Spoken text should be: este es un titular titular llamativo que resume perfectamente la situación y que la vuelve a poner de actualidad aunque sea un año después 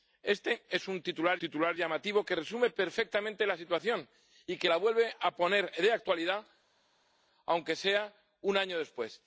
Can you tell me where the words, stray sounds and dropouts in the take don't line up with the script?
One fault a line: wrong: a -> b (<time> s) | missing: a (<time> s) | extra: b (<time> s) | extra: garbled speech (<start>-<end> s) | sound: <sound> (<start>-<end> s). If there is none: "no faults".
no faults